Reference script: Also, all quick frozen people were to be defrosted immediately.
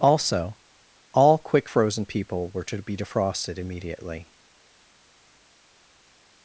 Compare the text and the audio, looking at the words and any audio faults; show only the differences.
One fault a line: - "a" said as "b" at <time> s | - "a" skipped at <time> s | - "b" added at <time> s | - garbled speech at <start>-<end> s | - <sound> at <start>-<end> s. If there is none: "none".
none